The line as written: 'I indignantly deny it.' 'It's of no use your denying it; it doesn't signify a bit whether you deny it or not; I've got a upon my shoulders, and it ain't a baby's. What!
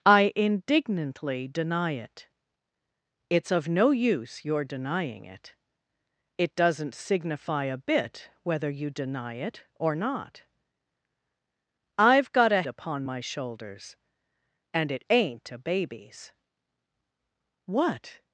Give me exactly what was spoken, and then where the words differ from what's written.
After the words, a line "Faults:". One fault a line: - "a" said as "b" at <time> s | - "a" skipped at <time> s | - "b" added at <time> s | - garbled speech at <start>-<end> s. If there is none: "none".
'I indignantly deny it.' 'It's of no use your denying it; it doesn't signify a bit whether you deny it or not; I've got a upon my shoulders, and it ain't a baby's. What!
Faults:
none